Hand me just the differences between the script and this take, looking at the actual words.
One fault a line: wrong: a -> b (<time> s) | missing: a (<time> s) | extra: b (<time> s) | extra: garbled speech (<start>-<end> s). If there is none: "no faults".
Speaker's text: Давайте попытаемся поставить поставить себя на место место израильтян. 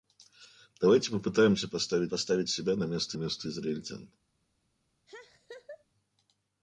no faults